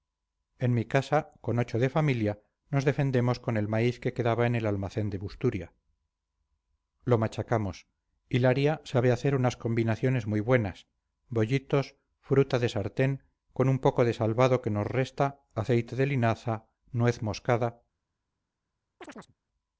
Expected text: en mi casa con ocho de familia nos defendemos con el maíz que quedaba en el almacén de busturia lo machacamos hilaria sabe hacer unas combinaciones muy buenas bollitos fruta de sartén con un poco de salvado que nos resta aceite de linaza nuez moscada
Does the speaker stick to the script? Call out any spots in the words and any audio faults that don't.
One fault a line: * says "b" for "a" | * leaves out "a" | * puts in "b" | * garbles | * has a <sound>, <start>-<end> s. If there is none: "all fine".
* has a chirp, 19.0-19.3 s